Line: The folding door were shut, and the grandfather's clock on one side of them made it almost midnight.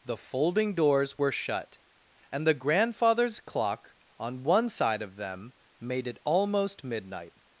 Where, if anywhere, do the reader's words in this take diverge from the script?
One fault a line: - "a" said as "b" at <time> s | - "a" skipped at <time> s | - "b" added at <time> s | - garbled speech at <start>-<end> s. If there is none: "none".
- "door" said as "doors" at 0.7 s